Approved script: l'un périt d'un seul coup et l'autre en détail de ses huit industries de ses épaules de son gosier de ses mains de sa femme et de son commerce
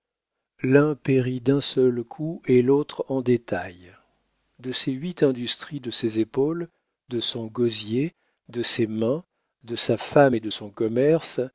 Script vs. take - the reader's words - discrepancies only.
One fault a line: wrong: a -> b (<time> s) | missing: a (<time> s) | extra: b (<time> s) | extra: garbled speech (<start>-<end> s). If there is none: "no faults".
no faults